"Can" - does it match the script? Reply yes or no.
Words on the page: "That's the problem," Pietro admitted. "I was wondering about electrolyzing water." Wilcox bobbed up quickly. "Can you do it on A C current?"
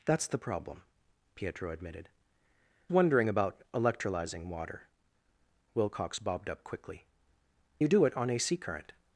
no